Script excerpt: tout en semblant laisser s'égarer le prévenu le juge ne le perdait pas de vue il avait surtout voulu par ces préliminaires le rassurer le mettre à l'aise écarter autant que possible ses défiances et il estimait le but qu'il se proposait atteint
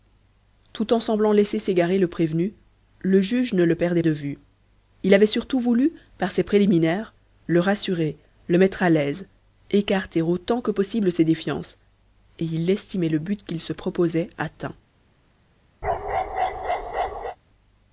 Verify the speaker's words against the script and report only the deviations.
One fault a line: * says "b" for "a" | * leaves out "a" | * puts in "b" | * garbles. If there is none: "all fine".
* leaves out "pas"